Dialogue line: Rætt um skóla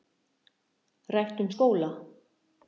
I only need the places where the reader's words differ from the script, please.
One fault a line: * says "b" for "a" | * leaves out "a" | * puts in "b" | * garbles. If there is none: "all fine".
all fine